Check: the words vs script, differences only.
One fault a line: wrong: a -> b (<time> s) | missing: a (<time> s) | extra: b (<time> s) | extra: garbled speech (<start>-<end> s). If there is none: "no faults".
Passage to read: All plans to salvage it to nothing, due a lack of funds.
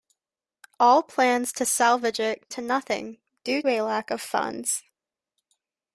no faults